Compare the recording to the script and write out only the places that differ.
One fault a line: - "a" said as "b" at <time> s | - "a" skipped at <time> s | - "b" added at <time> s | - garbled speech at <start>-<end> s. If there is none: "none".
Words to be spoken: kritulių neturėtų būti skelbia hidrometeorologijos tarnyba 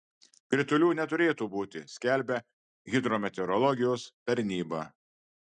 none